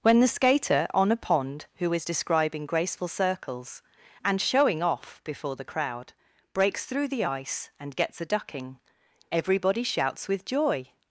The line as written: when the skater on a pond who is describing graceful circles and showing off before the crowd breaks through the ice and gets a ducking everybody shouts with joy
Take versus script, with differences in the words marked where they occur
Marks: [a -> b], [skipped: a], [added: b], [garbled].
when the skater on a pond who is describing graceful circles and showing off before the crowd breaks through the ice and gets a ducking everybody shouts with joy